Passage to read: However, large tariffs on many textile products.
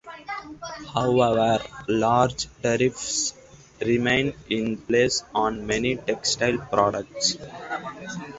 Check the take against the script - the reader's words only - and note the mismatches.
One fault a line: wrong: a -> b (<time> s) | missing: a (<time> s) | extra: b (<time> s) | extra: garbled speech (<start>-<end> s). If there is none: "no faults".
extra: remain in place (3.9 s)